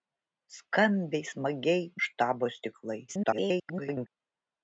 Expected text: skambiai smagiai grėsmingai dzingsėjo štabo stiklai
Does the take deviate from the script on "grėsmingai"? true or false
true